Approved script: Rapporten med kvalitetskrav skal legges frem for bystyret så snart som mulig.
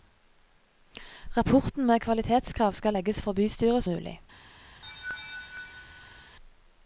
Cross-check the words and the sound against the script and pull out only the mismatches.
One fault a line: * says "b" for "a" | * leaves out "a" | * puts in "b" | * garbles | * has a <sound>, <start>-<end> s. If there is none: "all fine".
* leaves out "frem"
* leaves out "så snart som"
* has a laugh, 4.8-6.4 s